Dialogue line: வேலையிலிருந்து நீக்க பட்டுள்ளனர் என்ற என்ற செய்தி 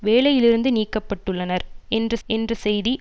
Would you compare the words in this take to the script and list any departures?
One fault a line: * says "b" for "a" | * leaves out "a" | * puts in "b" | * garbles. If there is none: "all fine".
all fine